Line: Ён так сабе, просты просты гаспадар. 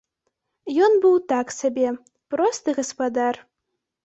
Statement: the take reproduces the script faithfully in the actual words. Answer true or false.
false